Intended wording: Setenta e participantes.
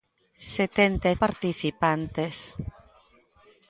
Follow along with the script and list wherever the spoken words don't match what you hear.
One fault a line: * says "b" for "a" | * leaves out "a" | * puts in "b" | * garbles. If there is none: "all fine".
all fine